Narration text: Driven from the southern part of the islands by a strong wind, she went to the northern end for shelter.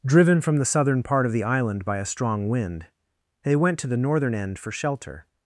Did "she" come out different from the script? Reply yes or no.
yes